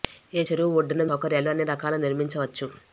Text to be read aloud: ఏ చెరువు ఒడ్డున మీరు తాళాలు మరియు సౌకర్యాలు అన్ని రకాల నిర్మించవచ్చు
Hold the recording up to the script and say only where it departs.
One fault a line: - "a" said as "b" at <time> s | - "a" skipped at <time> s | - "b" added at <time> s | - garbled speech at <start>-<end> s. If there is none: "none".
- "మీరు తాళాలు మరియు" skipped at 1.0 s